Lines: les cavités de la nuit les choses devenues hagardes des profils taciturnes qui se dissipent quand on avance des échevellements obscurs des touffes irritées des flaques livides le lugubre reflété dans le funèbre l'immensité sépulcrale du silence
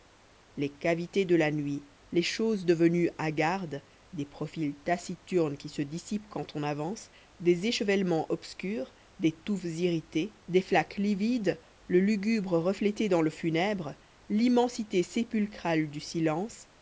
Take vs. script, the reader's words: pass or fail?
pass